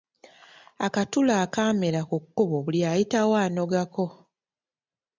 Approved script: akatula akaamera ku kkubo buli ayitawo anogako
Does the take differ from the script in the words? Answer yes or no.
no